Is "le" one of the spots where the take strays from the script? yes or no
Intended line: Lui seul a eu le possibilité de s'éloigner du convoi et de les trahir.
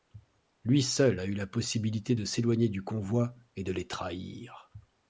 yes